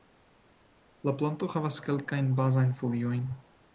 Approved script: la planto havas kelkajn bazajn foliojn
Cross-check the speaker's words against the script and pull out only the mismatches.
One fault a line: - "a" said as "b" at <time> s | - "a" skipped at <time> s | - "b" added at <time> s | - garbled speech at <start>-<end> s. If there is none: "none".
none